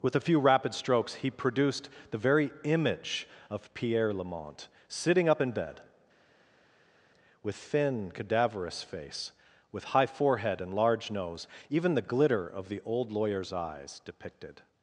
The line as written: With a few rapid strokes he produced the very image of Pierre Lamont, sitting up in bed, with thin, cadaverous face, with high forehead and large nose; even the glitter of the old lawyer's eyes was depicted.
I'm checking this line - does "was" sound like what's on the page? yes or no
no